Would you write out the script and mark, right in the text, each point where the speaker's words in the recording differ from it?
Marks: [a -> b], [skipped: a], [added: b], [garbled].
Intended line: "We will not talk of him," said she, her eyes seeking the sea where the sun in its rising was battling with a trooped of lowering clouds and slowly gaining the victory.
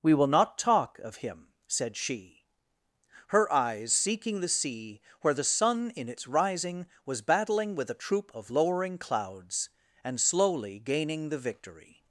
"We will not talk of him," said she, her eyes seeking the sea where the sun in its rising was battling with a [trooped -> troop] of lowering clouds and slowly gaining the victory.